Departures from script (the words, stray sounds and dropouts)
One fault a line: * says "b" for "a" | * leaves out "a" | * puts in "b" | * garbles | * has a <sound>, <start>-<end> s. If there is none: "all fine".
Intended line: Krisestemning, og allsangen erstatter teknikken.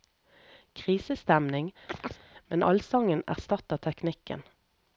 * has a chirp, 1.9-2.3 s
* says "men" for "og"